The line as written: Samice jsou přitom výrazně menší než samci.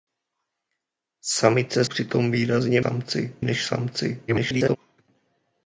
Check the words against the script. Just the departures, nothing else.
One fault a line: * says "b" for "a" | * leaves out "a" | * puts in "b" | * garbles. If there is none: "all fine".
* leaves out "jsou"
* says "samci" for "menší"
* garbles